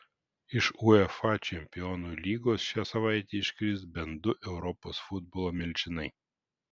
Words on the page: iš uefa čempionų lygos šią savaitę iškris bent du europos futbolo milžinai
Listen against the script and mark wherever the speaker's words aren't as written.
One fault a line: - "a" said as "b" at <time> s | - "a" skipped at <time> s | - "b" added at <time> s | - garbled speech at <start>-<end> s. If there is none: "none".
none